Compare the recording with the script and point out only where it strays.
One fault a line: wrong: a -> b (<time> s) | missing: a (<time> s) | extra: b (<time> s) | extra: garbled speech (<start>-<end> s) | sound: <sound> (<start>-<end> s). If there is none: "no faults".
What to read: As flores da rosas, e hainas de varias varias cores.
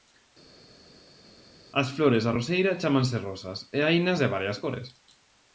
extra: roseira chámanse (2.4 s)
missing: varias (4.6 s)